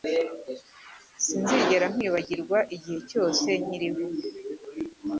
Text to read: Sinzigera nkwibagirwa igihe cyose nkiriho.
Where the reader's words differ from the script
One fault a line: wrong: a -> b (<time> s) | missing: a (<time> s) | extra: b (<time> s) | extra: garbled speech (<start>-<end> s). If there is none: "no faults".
no faults